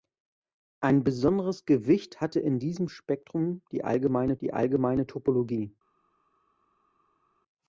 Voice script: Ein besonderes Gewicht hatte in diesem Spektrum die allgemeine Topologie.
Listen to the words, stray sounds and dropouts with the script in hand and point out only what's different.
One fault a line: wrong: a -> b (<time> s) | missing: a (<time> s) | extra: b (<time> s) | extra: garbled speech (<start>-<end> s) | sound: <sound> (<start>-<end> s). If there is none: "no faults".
extra: die allgemeine (4.4 s)